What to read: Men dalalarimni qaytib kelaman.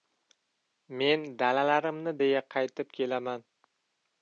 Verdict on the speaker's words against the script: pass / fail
fail